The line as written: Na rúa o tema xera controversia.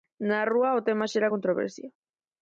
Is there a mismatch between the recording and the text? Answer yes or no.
no